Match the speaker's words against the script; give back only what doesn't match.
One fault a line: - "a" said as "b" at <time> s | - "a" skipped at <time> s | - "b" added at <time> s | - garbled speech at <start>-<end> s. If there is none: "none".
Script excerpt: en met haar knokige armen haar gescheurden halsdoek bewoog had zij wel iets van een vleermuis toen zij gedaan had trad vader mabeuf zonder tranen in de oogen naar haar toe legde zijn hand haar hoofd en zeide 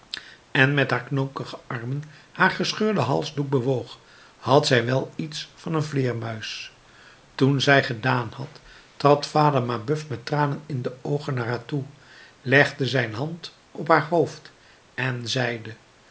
- "zonder" said as "met" at 10.1 s
- "op" added at 13.7 s